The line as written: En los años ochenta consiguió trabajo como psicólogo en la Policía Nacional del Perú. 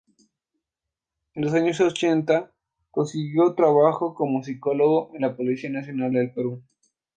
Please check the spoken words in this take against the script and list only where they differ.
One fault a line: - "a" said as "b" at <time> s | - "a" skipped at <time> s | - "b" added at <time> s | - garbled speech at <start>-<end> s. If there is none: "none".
none